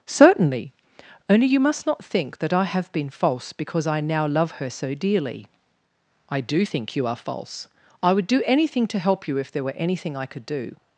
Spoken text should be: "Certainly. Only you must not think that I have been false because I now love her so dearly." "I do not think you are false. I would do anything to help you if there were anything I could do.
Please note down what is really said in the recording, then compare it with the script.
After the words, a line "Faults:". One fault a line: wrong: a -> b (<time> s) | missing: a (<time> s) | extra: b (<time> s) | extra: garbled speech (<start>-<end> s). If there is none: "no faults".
"Certainly. Only you must not think that I have been false because I now love her so dearly." "I do think you are false. I would do anything to help you if there were anything I could do.
Faults:
missing: not (6.7 s)